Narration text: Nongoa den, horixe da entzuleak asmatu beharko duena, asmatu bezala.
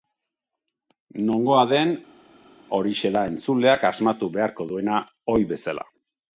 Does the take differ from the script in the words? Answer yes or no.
yes